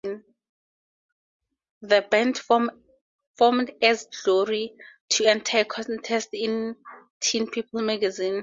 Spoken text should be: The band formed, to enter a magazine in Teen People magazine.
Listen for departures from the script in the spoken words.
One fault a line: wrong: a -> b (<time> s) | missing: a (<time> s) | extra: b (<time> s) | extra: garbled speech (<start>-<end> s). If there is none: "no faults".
extra: as Glory (3.8 s)
wrong: magazine -> contest (5.6 s)